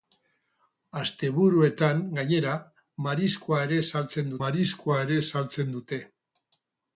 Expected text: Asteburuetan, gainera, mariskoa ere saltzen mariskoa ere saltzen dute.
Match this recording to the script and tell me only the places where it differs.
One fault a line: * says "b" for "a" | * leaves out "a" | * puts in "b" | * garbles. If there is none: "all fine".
all fine